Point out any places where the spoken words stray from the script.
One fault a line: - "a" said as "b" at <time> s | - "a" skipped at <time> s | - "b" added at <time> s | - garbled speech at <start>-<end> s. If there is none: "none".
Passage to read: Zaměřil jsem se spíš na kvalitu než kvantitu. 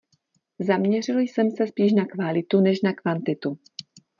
- "na" added at 2.8 s